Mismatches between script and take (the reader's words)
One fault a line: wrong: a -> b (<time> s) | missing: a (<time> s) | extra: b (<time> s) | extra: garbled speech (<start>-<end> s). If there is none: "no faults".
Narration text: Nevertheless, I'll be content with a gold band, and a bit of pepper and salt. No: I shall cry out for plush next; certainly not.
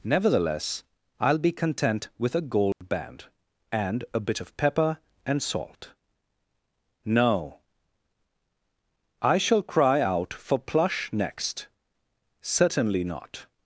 no faults